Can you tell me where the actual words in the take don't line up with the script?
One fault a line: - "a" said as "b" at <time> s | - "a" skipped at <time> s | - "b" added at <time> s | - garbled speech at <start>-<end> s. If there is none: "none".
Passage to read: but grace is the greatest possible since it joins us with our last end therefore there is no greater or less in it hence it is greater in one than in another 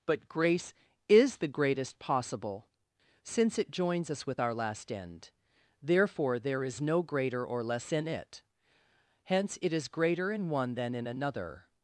none